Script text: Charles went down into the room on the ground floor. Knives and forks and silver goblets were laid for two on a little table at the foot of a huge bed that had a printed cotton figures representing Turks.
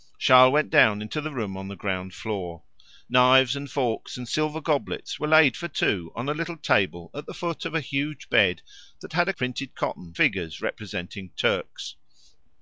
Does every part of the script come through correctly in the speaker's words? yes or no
yes